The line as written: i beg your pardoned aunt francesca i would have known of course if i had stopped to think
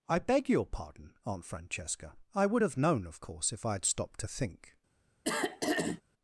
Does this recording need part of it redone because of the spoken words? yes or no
yes